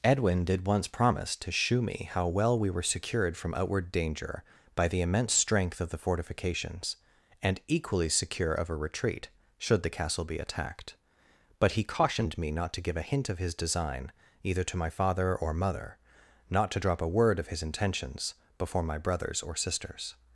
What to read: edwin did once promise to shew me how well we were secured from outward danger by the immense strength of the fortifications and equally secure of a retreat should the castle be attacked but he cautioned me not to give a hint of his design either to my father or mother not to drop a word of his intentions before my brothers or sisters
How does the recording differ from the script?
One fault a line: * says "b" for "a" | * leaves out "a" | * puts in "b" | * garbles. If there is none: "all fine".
all fine